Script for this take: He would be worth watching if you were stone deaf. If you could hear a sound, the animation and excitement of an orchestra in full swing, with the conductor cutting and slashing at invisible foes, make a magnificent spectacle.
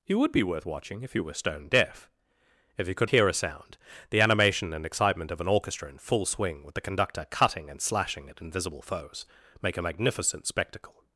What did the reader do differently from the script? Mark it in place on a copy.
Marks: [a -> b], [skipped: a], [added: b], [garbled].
He would be worth watching if you were stone deaf. If you could hear a sound, the animation and excitement of an orchestra in full swing, with the conductor cutting and slashing at invisible foes, make a magnificent spectacle.